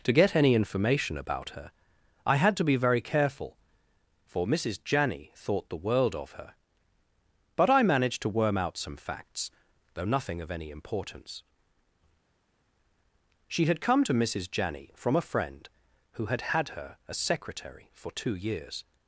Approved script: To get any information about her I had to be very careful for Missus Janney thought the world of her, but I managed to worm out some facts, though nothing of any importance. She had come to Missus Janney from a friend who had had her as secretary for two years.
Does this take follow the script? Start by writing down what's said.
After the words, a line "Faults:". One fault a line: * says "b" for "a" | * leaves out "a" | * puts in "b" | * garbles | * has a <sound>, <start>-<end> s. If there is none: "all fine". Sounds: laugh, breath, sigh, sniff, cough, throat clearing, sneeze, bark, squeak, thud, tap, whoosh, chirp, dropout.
To get any information about her I had to be very careful for Missus Janney thought the world of her, but I managed to worm out some facts, though nothing of any importance. She had come to Missus Janney from a friend who had had her as secretary for two years.
Faults:
all fine